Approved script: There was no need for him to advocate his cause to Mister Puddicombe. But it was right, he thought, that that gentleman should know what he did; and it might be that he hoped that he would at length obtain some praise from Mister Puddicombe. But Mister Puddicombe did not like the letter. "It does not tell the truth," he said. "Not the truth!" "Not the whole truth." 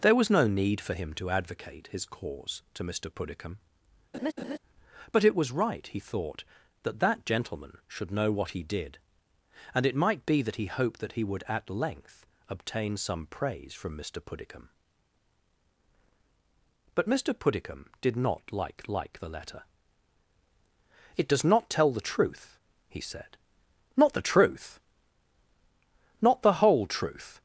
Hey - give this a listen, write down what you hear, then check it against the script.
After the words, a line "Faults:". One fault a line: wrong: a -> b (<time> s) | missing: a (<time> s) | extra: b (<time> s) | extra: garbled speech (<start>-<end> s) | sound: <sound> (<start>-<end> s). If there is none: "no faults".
There was no need for him to advocate his cause to Mister Puddicombe. But it was right, he thought, that that gentleman should know what he did; and it might be that he hoped that he would at length obtain some praise from Mister Puddicombe. But Mister Puddicombe did not like like the letter. "It does not tell the truth," he said. "Not the truth!" "Not the whole truth."
Faults:
sound: laugh (4.1-4.6 s)
extra: like (18.9 s)